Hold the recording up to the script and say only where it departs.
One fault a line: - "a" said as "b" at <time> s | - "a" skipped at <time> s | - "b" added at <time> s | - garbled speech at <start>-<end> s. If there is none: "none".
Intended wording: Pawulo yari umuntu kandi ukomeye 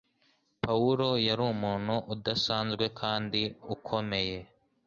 - "udasanzwe" added at 2.1 s